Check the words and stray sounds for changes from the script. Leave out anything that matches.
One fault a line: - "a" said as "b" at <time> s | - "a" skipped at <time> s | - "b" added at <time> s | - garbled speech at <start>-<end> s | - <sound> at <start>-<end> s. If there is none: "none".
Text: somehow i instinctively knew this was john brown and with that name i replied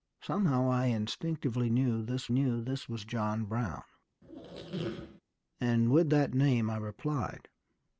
- "knew this" added at 2.3 s
- squeak at 4.2-5.2 s